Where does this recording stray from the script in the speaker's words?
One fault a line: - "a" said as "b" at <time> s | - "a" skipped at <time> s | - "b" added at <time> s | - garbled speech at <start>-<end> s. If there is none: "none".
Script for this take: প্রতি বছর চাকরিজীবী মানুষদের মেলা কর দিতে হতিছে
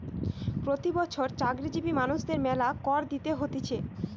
none